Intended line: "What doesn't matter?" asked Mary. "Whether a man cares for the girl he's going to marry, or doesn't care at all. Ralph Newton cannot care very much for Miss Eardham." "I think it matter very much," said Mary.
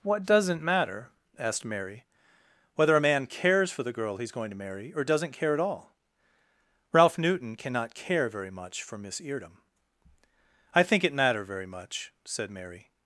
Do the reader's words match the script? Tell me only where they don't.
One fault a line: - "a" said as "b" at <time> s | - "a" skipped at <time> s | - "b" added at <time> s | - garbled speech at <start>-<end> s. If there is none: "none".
none